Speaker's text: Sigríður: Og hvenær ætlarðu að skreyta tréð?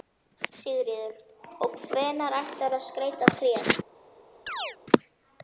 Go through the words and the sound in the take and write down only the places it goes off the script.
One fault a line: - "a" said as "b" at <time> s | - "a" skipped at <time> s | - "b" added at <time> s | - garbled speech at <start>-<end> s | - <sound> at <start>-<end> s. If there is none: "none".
- chirp at 4.5-4.8 s